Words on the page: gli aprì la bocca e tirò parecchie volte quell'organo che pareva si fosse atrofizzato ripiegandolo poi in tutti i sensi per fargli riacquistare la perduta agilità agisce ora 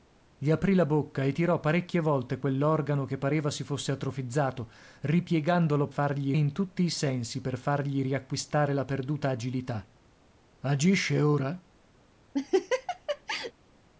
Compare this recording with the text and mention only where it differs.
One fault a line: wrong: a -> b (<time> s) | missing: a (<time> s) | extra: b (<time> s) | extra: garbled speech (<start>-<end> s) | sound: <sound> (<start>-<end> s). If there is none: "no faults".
wrong: poi -> fargli (5.9 s)
sound: laugh (12.3-13.5 s)